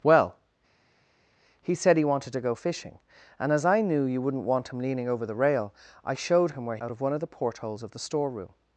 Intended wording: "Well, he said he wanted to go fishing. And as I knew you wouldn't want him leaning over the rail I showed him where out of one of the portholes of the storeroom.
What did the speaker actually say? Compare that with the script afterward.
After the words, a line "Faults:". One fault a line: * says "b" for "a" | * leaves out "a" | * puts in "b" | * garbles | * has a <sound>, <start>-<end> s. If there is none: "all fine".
"Well, he said he wanted to go fishing. And as I knew you wouldn't want him leaning over the rail I showed him where out of one of the portholes of the storeroom.
Faults:
all fine